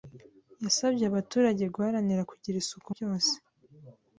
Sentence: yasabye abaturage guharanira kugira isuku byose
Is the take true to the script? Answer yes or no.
yes